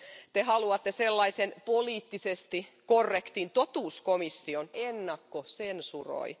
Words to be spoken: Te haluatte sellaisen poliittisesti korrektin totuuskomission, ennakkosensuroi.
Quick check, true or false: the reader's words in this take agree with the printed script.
true